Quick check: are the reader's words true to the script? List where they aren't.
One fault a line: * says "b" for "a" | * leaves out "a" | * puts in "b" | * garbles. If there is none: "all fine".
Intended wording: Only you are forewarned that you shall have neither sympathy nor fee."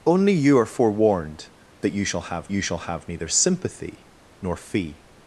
* puts in "you shall have"